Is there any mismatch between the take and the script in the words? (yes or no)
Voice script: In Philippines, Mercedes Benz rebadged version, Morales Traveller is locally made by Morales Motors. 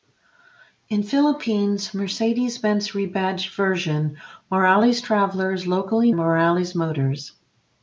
yes